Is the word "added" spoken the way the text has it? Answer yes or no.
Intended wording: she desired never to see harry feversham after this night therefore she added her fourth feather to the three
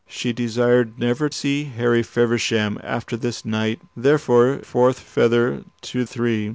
no